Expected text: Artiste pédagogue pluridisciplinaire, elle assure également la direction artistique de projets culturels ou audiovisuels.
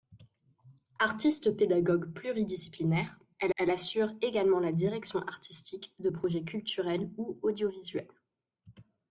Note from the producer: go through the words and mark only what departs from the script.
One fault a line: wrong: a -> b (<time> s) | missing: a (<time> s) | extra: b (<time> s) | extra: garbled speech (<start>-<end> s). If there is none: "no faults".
extra: elle (3.5 s)